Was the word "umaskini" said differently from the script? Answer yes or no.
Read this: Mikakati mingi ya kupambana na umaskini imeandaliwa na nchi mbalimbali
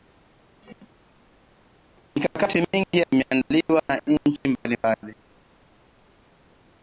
yes